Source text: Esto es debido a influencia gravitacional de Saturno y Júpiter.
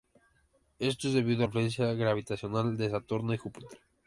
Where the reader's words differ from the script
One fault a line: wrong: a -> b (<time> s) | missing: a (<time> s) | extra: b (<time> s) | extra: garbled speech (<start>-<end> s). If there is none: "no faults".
no faults